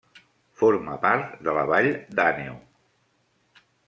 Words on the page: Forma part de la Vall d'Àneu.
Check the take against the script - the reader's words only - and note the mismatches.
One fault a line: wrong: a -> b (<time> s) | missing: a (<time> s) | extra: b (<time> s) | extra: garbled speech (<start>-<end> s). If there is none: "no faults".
no faults